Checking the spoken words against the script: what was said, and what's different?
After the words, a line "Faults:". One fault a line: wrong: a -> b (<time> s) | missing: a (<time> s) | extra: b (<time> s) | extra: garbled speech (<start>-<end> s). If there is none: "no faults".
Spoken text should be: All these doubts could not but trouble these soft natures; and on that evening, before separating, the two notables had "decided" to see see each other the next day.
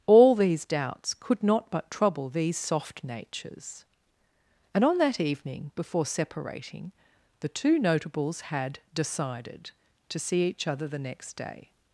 All these doubts could not but trouble these soft natures; and on that evening, before separating, the two notables had "decided" to see each other the next day.
Faults:
missing: see (10.4 s)